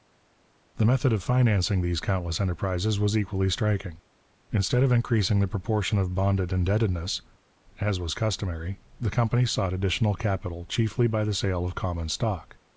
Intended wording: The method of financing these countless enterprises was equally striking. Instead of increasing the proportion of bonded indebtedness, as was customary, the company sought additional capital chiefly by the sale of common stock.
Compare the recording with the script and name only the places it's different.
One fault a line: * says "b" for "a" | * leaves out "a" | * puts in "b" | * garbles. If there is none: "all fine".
all fine